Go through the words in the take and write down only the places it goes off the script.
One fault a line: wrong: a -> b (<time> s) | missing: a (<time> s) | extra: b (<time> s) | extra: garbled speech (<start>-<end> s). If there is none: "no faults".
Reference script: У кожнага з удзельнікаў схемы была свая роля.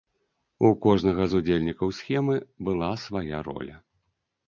no faults